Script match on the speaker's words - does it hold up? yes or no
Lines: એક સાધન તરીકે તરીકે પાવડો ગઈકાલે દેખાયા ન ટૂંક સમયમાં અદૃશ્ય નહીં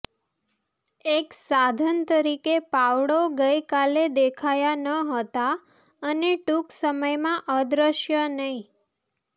no